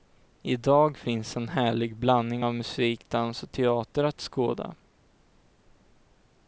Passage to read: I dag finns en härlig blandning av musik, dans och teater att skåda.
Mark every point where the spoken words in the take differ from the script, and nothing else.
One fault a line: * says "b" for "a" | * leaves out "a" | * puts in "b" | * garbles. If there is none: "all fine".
all fine